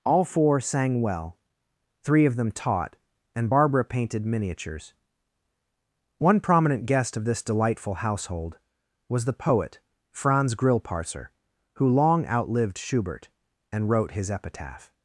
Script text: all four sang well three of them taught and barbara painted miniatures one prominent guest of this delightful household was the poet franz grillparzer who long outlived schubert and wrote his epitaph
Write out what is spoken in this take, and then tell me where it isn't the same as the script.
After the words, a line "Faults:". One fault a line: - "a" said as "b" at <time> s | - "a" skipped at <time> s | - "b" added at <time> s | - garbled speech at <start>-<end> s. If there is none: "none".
all four sang well three of them taught and barbara painted miniatures one prominent guest of this delightful household was the poet franz grillparzer who long outlived schubert and wrote his epitaph
Faults:
none